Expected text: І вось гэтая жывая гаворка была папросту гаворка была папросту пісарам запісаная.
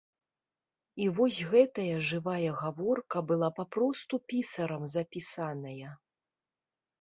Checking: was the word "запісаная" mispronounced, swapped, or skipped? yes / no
no